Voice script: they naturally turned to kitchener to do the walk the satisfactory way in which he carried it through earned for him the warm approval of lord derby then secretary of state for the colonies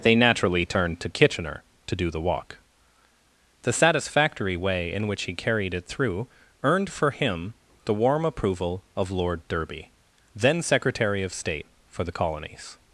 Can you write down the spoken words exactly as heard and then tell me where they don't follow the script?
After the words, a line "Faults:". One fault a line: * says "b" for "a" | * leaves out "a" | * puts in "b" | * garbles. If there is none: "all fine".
they naturally turned to kitchener to do the walk the satisfactory way in which he carried it through earned for him the warm approval of lord derby then secretary of state for the colonies
Faults:
all fine